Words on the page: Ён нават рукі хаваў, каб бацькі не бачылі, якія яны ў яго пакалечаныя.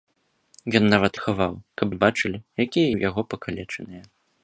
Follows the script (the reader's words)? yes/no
no